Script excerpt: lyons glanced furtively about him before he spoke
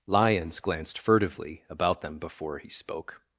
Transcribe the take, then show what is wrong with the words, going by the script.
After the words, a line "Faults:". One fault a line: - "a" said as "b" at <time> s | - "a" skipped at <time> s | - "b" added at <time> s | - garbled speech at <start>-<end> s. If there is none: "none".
lyons glanced furtively about them before he spoke
Faults:
- "him" said as "them" at 2.0 s